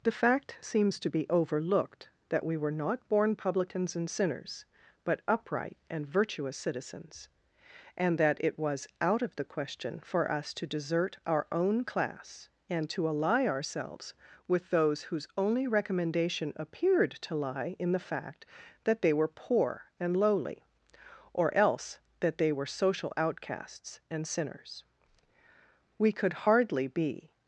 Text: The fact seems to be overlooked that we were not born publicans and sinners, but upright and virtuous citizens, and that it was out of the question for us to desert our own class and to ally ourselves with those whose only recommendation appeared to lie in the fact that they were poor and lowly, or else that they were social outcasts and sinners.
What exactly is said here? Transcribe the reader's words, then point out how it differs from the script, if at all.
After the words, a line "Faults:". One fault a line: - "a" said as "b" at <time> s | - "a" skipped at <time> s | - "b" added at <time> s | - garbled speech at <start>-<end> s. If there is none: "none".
The fact seems to be overlooked that we were not born publicans and sinners, but upright and virtuous citizens, and that it was out of the question for us to desert our own class and to ally ourselves with those whose only recommendation appeared to lie in the fact that they were poor and lowly, or else that they were social outcasts and sinners. We could hardly be
Faults:
- "We could hardly be" added at 26.0 s